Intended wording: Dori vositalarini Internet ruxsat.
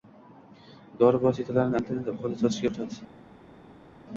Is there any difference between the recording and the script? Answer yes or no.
yes